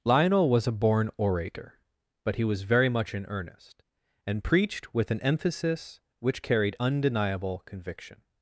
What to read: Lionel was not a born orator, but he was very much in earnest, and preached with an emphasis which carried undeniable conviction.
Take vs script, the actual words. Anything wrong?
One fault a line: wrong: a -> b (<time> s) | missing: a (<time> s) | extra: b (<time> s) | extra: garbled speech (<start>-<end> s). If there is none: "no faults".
missing: not (0.7 s)